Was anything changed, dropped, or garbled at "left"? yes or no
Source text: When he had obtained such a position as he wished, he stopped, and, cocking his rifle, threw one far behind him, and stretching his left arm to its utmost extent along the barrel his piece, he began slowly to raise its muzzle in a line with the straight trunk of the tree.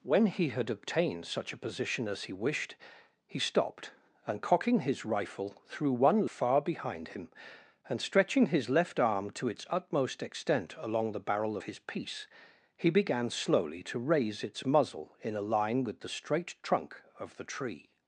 no